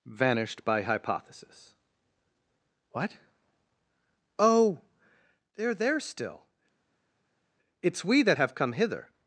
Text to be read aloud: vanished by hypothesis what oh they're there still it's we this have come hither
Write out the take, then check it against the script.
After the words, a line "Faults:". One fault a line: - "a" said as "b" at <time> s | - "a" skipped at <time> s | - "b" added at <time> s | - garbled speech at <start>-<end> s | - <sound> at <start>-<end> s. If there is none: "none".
vanished by hypothesis what oh they're there still it's we that have come hither
Faults:
- "this" said as "that" at 8.2 s